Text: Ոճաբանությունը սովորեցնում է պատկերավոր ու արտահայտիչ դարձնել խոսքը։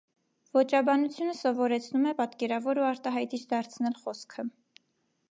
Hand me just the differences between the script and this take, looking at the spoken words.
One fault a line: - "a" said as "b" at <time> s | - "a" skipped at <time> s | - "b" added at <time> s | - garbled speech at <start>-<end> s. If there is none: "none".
none